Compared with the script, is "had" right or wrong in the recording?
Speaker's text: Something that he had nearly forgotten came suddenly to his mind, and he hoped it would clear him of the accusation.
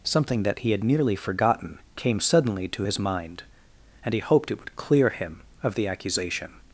right